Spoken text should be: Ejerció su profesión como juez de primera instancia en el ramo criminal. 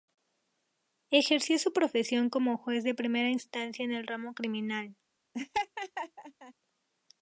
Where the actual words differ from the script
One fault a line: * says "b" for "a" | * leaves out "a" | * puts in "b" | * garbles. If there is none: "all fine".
all fine